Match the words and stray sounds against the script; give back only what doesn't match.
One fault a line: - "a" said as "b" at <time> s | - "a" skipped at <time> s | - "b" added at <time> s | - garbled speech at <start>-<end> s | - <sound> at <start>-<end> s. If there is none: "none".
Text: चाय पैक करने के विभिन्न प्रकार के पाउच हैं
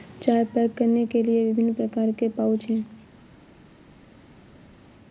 - "लिए" added at 1.2 s